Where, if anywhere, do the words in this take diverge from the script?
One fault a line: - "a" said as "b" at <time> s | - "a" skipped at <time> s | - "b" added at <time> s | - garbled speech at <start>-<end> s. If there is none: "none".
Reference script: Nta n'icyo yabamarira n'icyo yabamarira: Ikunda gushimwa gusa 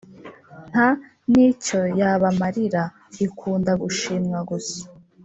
- "n'icyo yabamarira" skipped at 2.8 s